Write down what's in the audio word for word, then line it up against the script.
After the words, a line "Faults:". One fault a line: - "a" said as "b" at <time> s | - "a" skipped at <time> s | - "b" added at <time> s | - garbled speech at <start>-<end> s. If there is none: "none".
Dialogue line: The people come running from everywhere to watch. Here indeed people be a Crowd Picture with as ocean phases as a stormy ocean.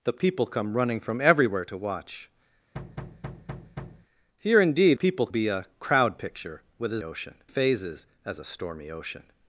The people come running from everywhere to watch. Here indeed people be a Crowd Picture with as ocean phases as a stormy ocean.
Faults:
none